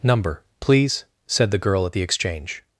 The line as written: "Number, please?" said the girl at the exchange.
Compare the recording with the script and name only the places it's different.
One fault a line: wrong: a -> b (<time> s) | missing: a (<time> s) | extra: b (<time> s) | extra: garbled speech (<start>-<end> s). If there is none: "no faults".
no faults